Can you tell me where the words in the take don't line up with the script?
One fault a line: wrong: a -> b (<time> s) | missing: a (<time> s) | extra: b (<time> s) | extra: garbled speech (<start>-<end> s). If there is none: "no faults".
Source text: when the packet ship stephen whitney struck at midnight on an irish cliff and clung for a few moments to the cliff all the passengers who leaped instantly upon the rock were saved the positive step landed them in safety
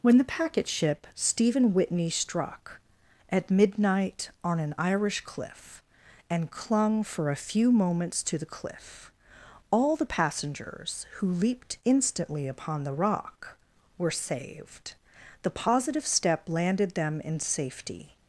no faults